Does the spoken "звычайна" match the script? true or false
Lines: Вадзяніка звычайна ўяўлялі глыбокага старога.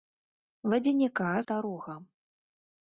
false